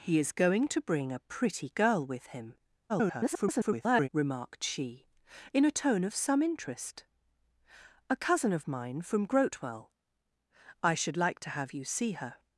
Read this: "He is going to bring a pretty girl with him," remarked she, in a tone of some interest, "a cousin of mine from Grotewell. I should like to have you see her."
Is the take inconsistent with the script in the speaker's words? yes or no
yes